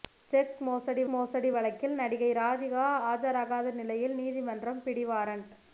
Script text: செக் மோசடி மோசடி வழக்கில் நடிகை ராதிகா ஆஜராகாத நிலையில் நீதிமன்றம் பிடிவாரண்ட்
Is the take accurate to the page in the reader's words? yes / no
yes